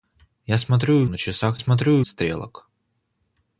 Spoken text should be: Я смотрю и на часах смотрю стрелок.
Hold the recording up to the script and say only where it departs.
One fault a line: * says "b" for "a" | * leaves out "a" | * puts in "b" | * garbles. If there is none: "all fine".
all fine